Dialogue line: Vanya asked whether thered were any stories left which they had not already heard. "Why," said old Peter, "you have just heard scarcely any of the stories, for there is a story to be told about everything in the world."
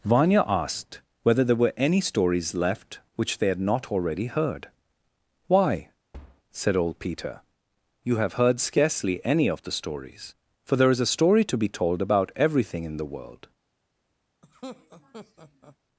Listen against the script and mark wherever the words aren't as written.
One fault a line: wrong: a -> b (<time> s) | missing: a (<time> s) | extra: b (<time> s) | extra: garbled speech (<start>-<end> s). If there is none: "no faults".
wrong: thered -> there (1.4 s)
missing: just (8.3 s)